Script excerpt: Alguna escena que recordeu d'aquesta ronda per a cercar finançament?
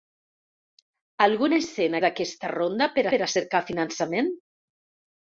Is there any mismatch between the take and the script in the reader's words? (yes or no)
yes